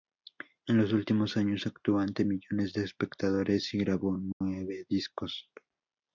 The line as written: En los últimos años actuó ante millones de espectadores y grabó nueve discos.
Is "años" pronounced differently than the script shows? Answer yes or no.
no